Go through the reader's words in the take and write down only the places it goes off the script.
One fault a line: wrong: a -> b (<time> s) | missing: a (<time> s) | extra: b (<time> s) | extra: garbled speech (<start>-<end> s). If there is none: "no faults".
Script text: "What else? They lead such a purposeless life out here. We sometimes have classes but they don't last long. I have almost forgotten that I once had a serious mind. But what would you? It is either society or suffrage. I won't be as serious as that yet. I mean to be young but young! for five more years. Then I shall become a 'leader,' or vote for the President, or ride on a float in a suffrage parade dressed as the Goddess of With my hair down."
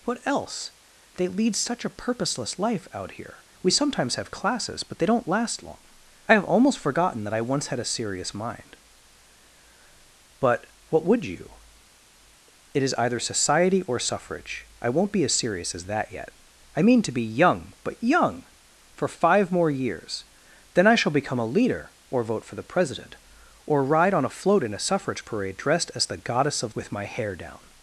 no faults